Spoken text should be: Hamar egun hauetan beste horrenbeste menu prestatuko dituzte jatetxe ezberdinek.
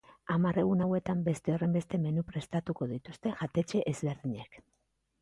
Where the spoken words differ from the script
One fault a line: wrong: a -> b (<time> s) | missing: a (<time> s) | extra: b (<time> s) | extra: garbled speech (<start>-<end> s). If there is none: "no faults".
no faults